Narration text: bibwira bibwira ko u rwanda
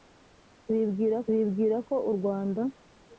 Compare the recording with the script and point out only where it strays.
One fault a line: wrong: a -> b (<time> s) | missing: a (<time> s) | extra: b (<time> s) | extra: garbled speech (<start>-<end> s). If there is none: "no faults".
no faults